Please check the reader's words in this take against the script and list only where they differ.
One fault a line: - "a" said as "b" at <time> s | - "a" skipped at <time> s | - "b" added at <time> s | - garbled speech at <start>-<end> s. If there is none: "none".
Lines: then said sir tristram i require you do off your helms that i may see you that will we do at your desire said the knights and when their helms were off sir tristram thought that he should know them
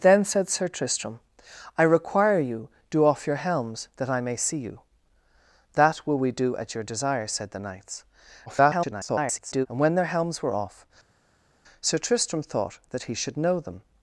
- garbled speech at 8.5-9.7 s